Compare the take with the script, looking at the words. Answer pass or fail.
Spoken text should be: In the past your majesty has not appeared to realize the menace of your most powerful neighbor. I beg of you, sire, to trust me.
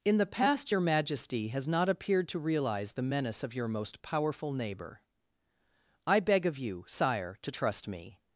pass